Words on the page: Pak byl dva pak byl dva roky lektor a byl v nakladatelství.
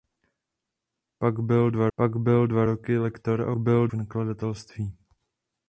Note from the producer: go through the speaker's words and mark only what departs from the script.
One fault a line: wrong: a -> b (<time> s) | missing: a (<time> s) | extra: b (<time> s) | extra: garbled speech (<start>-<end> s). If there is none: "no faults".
no faults